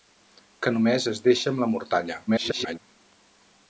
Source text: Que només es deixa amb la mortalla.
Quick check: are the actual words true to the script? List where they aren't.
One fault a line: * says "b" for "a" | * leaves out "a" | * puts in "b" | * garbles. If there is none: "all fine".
* garbles